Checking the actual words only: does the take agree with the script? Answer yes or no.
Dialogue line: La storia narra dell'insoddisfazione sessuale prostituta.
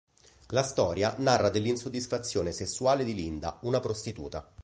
no